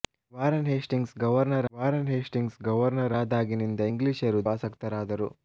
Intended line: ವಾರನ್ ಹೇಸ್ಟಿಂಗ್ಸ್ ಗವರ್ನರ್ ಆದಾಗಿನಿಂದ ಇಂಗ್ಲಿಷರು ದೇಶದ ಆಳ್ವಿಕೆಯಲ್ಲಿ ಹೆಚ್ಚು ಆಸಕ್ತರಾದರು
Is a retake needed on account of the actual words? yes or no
yes